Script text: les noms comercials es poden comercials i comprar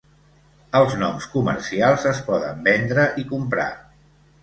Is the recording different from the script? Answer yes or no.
yes